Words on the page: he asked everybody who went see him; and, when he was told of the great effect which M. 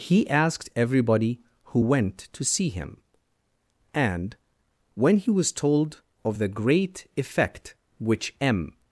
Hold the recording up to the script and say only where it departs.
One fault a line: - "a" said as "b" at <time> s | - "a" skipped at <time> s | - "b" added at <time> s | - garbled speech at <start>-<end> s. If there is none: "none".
- "to" added at 2.3 s